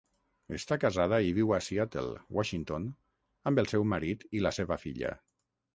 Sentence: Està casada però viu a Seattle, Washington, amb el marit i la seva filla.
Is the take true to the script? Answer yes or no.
no